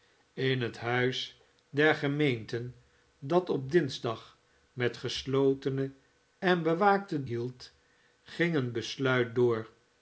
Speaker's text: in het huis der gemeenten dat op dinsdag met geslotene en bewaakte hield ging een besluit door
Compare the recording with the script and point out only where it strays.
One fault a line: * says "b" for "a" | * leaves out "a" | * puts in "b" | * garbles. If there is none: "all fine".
all fine